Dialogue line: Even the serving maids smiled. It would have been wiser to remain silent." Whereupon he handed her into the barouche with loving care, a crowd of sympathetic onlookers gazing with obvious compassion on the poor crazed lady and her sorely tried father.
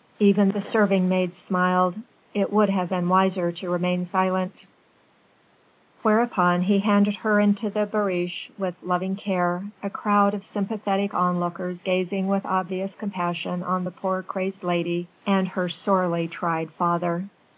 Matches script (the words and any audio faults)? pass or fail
pass